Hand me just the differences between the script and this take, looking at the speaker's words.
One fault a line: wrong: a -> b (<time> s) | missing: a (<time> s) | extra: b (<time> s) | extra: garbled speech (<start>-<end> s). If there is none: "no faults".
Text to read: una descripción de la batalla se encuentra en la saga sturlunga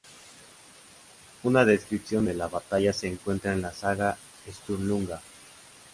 no faults